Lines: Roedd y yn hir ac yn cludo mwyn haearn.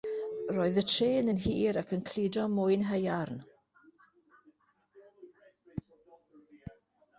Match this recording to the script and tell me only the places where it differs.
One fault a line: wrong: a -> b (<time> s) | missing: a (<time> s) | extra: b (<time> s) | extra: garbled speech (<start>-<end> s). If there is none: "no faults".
extra: trên (0.9 s)